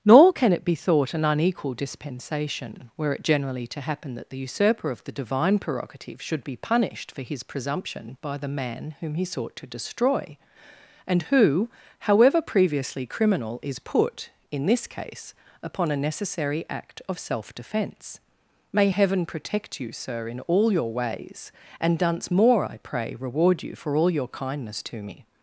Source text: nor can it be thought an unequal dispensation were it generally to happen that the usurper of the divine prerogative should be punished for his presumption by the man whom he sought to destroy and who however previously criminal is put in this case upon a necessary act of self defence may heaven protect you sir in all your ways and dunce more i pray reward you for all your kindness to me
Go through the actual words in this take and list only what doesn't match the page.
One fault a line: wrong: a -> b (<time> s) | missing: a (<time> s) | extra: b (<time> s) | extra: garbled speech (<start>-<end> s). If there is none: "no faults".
no faults